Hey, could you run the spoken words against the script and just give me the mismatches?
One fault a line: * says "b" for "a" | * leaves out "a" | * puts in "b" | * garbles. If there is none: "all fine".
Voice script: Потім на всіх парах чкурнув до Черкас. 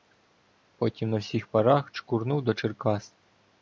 all fine